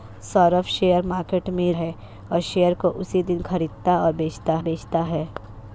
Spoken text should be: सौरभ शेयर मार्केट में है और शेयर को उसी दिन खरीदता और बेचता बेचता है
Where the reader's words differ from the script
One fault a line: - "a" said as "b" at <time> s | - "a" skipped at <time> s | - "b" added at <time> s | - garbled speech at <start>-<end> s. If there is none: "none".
none